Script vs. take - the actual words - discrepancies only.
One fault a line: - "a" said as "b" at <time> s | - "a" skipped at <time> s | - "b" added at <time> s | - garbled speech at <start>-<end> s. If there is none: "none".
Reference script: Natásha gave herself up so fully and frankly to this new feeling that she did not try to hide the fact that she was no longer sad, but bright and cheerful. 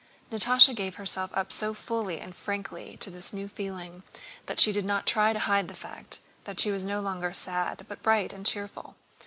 none